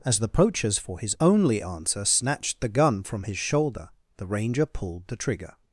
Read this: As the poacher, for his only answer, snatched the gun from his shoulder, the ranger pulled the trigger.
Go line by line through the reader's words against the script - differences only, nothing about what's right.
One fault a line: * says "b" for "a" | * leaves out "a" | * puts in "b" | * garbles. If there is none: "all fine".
* says "poachers" for "poacher"